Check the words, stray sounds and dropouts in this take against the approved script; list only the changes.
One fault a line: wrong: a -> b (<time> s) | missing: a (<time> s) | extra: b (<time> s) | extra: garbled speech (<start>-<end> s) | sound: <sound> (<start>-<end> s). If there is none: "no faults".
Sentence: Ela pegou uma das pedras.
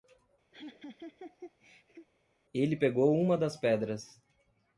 sound: laugh (0.5-2.1 s)
wrong: Ela -> Ele (2.5 s)